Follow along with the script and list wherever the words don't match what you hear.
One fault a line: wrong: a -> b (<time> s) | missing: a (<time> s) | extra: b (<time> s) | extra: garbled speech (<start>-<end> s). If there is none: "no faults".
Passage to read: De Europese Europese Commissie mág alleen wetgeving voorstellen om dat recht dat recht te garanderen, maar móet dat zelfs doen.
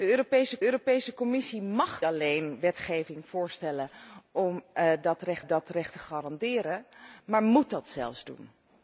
no faults